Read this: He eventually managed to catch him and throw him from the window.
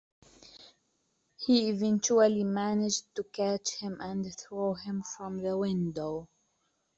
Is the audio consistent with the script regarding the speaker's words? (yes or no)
yes